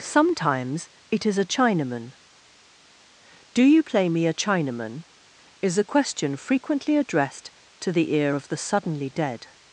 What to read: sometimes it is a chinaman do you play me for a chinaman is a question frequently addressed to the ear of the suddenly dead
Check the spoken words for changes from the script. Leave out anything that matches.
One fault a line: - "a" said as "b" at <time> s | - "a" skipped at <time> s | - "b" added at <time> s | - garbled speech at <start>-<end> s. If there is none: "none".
- "for" skipped at 4.2 s